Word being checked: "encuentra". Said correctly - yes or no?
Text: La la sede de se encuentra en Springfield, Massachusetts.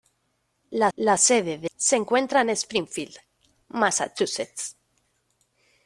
yes